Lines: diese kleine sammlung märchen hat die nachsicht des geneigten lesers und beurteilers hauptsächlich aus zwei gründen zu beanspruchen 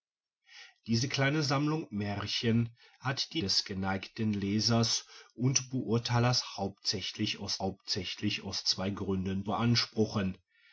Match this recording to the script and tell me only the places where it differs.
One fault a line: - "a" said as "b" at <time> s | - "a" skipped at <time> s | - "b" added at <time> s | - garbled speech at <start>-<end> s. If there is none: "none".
- "nachsicht" skipped at 3.4 s
- "hauptsächlich aus" added at 7.6 s
- "zu" skipped at 9.5 s